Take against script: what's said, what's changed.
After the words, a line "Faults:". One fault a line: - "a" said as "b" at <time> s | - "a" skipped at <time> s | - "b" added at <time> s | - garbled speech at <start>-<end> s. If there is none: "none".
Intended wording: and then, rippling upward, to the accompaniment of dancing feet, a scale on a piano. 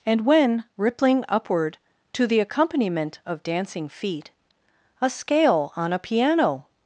and when, rippling upward, to the accompaniment of dancing feet, a scale on a piano.
Faults:
- "then" said as "when" at 0.2 s